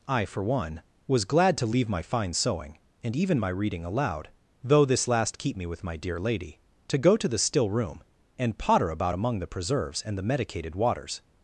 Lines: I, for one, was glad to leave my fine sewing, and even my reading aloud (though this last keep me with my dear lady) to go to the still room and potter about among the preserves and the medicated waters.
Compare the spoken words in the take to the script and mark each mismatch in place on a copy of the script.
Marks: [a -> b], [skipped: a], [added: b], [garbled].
I, for one, was glad to leave my fine sewing, and even my reading aloud (though this last keep me with my dear lady) to go to the still room and potter about among the preserves and the medicated waters.